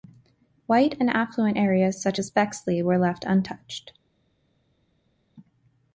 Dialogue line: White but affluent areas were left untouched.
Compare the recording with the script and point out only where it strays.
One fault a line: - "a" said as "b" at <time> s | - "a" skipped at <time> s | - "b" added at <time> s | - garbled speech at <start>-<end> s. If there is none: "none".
- "but" said as "and" at 1.0 s
- "such as Bexley" added at 2.0 s